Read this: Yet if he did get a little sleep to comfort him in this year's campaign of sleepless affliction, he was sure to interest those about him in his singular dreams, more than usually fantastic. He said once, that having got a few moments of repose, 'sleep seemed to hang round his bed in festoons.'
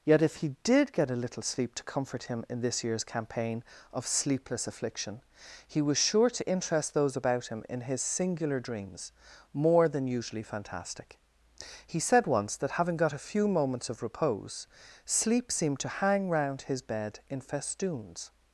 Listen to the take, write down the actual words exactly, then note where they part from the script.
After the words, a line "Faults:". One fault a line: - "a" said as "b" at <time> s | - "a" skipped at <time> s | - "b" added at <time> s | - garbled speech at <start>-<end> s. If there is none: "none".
Yet if he did get a little sleep to comfort him in this year's campaign of sleepless affliction, he was sure to interest those about him in his singular dreams, more than usually fantastic. He said once, that having got a few moments of repose, 'sleep seemed to hang round his bed in festoons.'
Faults:
none